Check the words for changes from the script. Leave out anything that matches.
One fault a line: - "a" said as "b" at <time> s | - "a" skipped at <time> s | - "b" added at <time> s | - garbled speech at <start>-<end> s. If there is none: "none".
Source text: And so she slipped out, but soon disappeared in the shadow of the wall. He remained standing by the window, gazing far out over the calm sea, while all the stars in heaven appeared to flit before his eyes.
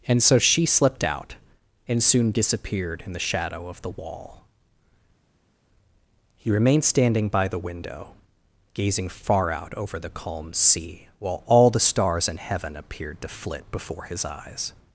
- "but" said as "and" at 1.9 s